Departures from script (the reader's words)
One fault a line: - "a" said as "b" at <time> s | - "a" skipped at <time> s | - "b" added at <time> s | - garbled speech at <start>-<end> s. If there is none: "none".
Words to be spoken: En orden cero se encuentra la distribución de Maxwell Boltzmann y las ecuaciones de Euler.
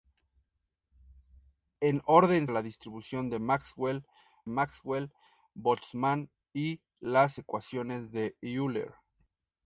- "cero se encuentra" skipped at 2.5 s
- "Maxwell" added at 4.5 s